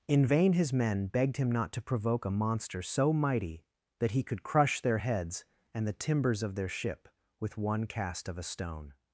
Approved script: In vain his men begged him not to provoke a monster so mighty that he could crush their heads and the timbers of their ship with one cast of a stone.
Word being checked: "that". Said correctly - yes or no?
yes